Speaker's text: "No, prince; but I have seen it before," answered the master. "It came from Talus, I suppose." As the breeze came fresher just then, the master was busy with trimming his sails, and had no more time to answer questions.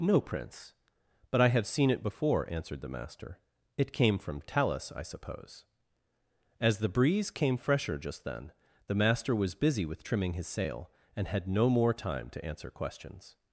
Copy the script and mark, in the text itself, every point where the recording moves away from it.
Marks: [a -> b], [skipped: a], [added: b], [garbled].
"No, prince; but I have seen it before," answered the master. "It came from Talus, I suppose." As the breeze came fresher just then, the master was busy with trimming his [sails, -> sail] and had no more time to answer questions.